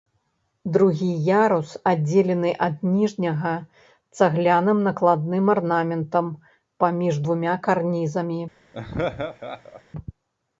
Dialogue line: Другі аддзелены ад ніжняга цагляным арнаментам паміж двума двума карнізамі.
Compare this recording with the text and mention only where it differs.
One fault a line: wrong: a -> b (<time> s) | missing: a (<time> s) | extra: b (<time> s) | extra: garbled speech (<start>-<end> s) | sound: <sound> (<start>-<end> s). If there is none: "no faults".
extra: ярус (1.4 s)
extra: накладным (4.9 s)
missing: двума (7.5 s)
sound: laugh (8.7-9.8 s)